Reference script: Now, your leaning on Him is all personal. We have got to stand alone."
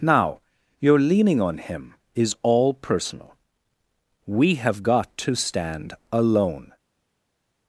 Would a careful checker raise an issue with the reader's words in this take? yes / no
no